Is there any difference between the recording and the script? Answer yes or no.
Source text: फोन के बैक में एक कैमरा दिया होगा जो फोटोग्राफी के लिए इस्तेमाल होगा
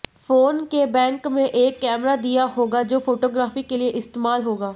no